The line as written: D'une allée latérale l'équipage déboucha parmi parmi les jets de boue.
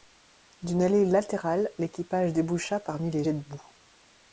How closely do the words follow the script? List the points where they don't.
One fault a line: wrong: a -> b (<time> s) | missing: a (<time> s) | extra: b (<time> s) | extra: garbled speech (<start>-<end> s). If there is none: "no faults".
missing: parmi (3.1 s)